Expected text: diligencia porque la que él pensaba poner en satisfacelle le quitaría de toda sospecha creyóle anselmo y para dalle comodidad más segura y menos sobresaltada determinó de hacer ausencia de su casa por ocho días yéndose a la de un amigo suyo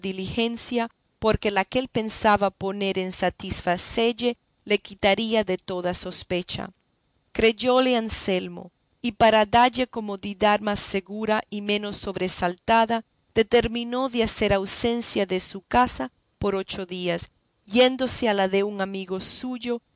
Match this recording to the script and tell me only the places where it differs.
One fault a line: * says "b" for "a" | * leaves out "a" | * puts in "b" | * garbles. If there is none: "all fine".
all fine